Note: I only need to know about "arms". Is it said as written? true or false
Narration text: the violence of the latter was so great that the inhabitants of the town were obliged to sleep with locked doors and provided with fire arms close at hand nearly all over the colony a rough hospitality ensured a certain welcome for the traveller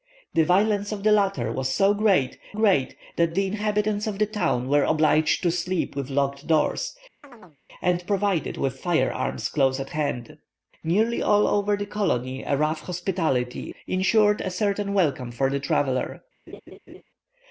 true